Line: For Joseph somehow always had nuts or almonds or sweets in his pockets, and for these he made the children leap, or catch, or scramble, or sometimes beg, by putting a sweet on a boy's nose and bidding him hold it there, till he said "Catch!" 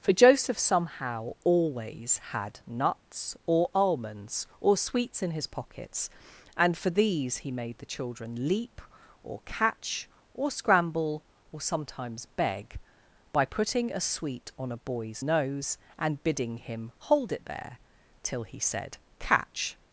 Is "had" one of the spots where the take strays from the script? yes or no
no